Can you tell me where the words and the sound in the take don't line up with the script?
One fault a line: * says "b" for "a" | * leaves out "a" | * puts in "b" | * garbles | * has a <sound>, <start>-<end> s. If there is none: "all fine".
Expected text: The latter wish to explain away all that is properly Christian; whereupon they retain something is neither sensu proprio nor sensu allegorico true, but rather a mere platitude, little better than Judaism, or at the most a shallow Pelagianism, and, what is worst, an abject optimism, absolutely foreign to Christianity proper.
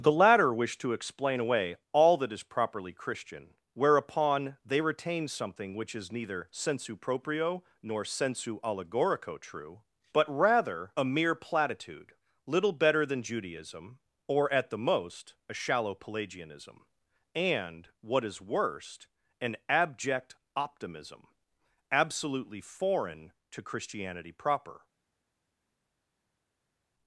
* puts in "which"